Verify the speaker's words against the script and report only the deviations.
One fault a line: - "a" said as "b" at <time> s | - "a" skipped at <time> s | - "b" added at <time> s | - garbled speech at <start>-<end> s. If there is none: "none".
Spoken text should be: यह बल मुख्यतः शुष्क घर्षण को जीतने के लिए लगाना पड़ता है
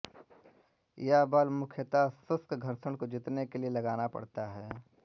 none